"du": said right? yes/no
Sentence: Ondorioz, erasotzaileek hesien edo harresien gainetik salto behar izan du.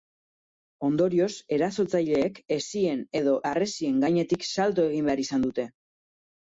no